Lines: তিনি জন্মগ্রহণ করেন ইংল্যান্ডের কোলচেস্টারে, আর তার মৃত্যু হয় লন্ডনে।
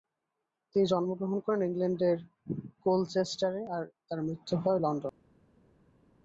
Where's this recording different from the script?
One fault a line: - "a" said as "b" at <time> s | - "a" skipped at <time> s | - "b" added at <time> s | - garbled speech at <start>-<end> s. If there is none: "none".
none